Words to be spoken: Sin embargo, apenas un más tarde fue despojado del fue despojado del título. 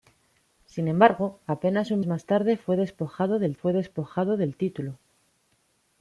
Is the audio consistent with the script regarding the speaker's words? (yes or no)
yes